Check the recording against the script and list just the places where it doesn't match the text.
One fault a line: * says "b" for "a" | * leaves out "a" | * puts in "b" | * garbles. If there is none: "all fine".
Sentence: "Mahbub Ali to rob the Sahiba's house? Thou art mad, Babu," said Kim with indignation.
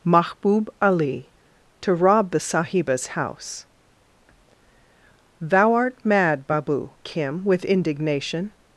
* leaves out "said"